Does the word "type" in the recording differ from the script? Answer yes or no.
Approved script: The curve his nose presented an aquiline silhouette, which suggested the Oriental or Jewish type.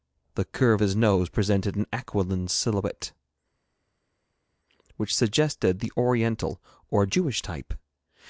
no